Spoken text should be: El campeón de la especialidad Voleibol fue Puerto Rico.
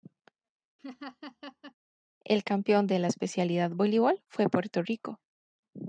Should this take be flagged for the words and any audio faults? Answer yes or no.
yes